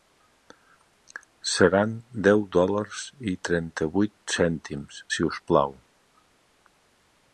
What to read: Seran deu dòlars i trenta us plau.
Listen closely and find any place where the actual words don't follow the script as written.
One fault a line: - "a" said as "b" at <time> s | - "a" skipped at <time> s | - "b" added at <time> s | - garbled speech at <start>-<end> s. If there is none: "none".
- "vuit cèntims si" added at 4.0 s